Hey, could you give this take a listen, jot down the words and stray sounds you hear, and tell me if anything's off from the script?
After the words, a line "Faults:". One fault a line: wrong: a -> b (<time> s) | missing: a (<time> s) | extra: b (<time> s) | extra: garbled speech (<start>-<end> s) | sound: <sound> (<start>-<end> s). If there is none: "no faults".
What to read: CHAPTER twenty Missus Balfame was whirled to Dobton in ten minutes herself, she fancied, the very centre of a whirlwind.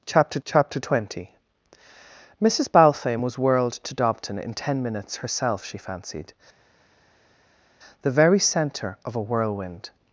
CHAPTER chapter twenty Missus Balfame was whirled to Dobton in ten minutes herself, she fancied, the very centre of a whirlwind.
Faults:
extra: chapter (0.5 s)